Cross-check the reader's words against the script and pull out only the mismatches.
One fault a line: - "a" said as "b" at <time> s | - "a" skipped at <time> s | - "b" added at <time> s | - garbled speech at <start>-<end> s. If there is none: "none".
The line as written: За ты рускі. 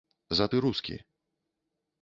none